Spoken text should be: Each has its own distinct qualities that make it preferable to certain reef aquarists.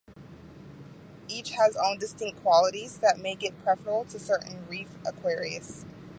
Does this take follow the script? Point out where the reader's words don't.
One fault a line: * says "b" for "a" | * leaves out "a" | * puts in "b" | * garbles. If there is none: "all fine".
* leaves out "its"